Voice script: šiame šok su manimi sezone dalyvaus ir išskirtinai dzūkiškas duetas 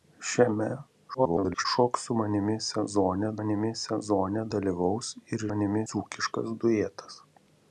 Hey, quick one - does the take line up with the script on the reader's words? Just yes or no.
no